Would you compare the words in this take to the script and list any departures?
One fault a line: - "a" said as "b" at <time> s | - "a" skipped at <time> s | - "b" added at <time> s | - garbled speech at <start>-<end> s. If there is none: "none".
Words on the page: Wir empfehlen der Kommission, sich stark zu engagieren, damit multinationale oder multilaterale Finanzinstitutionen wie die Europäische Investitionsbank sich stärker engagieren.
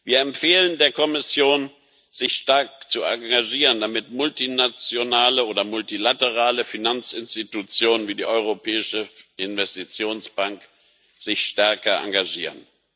none